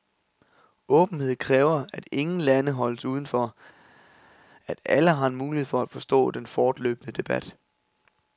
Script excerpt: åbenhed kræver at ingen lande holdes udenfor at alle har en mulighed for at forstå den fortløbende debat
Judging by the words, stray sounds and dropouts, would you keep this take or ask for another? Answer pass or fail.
pass